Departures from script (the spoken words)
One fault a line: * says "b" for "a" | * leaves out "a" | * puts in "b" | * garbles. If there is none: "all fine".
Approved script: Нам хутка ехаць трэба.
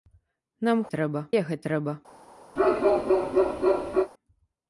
* says "трэба" for "хутка"